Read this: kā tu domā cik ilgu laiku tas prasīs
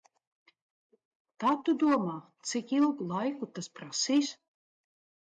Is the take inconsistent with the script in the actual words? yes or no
no